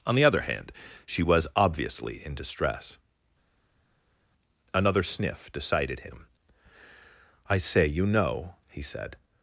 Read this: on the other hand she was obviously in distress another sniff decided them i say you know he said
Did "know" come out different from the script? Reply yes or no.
no